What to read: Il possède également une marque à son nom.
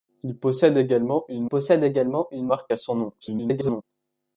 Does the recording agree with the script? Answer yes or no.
no